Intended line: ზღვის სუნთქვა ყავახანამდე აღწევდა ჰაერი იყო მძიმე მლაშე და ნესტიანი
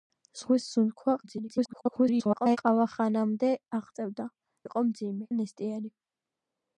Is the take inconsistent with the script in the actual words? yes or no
yes